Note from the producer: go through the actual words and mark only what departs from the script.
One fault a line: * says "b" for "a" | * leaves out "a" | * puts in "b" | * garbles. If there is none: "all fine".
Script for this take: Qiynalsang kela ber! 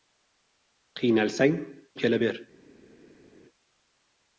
all fine